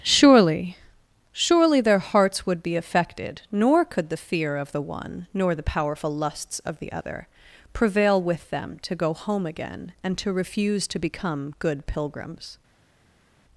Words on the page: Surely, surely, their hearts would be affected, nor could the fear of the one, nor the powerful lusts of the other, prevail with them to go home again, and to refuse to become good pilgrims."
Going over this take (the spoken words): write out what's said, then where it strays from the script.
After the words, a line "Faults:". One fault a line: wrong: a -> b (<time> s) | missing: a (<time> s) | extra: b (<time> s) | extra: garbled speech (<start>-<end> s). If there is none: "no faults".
Surely, surely, their hearts would be affected, nor could the fear of the one, nor the powerful lusts of the other, prevail with them to go home again, and to refuse to become good pilgrims."
Faults:
no faults